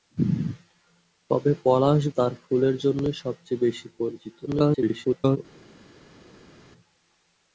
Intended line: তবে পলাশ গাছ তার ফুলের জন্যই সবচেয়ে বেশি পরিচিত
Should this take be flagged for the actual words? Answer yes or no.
yes